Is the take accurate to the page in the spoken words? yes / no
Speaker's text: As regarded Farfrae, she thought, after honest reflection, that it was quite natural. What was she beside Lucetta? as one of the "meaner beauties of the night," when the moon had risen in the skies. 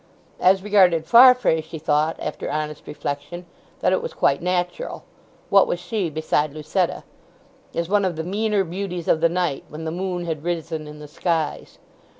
yes